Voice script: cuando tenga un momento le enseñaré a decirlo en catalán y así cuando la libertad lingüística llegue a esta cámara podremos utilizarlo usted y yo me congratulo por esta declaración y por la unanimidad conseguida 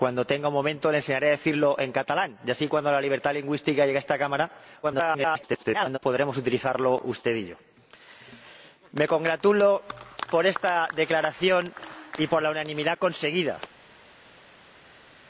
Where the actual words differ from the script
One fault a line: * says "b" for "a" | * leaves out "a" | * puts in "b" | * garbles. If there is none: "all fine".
* garbles